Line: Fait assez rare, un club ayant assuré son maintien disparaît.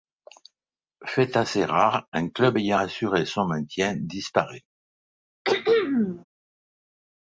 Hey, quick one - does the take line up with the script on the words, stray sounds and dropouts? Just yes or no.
no